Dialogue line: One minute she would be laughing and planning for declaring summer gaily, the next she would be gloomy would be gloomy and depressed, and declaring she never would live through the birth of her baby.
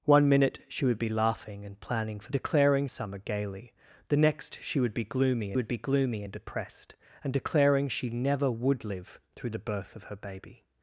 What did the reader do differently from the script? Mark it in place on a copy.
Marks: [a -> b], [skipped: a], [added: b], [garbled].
One minute she would be laughing and planning for declaring summer gaily, the next she would be gloomy would be gloomy and depressed, and declaring she never would live through the birth of her baby.